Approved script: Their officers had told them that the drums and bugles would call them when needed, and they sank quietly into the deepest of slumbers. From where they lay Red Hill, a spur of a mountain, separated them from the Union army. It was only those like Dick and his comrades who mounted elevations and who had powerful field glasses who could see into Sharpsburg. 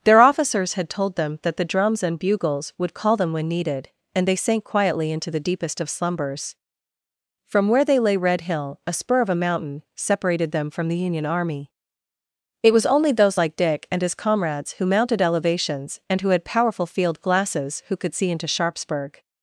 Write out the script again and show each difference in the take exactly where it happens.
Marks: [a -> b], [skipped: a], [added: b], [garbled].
Their officers had told them that the drums and bugles would call them when needed, and they sank quietly into the deepest of slumbers. From where they lay Red Hill, a spur of a mountain, separated them from the Union army. It was only those like Dick and his comrades who mounted elevations and who had powerful field glasses who could see into Sharpsburg.